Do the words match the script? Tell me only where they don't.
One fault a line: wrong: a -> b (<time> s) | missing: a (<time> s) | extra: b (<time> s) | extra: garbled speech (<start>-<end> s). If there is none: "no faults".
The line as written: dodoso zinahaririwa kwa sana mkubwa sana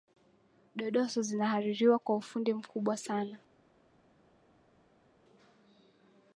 wrong: sana -> ufundi (2.1 s)